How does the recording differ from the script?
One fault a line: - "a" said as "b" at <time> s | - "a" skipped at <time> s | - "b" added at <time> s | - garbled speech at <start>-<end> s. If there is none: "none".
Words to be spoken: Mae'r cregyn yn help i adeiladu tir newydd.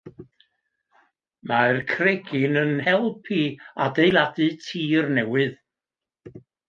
none